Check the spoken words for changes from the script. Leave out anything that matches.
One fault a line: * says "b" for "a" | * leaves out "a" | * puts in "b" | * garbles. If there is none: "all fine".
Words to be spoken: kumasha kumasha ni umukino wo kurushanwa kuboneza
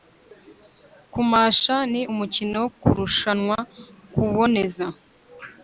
* leaves out "kumasha"